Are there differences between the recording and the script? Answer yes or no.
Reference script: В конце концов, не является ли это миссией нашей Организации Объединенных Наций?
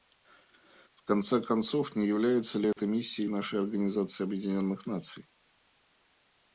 no